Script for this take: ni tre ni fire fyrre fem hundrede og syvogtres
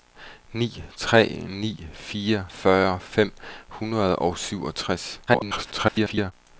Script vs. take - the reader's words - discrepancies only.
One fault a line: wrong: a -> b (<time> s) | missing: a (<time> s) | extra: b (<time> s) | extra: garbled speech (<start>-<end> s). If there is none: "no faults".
extra: garbled speech (5.3-6.3 s)